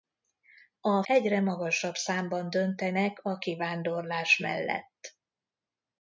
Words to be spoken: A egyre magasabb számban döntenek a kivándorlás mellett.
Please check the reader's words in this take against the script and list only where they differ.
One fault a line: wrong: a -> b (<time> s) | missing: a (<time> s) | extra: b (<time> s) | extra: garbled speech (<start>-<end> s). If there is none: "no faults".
no faults